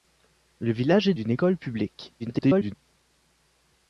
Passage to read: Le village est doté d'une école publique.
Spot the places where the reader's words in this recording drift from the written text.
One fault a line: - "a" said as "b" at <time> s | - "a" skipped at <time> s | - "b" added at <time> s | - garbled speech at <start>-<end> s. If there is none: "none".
- "doté" skipped at 1.1 s
- garbled speech at 2.2-2.7 s